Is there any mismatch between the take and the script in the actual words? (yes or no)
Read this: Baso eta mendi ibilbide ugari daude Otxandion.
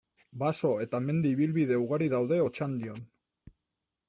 no